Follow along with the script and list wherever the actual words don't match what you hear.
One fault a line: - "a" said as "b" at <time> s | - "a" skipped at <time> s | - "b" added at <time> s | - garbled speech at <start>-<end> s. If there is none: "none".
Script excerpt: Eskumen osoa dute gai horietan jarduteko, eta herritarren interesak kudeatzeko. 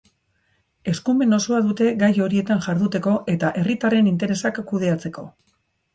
none